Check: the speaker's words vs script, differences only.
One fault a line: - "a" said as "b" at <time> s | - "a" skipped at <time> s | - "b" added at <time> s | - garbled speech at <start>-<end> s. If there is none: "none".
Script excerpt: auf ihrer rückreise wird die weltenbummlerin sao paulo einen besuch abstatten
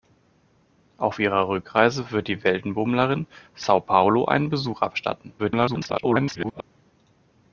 - garbled speech at 5.4-6.6 s